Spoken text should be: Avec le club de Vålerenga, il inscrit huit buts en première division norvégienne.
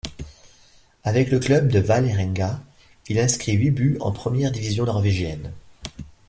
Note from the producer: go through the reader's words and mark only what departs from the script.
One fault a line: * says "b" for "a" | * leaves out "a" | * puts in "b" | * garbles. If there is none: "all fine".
all fine